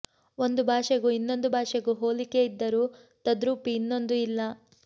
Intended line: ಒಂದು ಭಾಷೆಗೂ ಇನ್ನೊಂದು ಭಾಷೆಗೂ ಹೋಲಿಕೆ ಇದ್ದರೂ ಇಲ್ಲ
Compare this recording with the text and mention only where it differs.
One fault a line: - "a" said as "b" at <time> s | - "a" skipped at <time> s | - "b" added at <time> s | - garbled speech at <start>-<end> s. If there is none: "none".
- "ತದ್ರೂಪಿ ಇನ್ನೊಂದು" added at 3.3 s